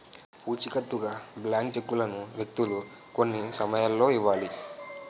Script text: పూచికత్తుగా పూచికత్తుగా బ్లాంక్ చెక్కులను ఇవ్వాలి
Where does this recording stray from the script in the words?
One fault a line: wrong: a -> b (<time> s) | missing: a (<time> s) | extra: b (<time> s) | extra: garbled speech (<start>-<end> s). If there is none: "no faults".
missing: పూచికత్తుగా (1.1 s)
extra: వ్యక్తులు కొన్ని సమయాల్లో (2.4 s)